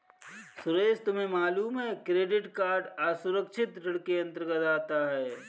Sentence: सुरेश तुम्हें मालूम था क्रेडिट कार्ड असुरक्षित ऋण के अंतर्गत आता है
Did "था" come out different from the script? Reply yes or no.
yes